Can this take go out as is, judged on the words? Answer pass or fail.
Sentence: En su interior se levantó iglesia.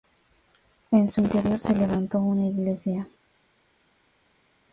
fail